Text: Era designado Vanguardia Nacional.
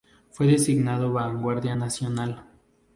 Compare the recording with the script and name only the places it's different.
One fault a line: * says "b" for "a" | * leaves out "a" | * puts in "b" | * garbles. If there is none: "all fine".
* says "Fue" for "Era"